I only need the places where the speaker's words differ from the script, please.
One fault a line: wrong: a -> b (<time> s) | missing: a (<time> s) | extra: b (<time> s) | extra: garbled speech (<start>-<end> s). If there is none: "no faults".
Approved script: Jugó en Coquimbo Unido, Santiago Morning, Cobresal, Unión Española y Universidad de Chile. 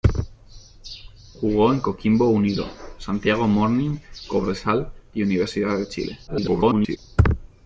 missing: Unión Española (4.9 s)
extra: garbled speech (6.3-7.0 s)